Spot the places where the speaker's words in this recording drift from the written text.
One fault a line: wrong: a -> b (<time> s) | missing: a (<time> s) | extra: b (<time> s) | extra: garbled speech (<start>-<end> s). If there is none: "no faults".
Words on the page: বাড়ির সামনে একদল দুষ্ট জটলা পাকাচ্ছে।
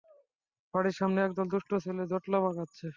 extra: ছেলে (1.9 s)